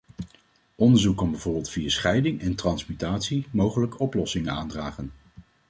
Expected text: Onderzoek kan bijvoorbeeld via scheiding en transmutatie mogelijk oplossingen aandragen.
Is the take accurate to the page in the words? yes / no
yes